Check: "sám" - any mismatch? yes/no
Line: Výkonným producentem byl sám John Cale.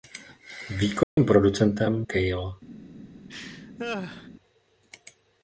yes